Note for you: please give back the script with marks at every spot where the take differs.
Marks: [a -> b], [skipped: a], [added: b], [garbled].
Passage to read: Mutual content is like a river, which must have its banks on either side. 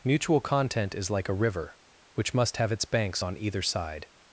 Mutual content is like a river, which must have its banks on either side.